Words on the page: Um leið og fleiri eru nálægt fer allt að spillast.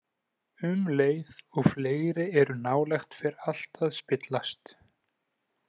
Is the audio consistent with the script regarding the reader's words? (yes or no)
yes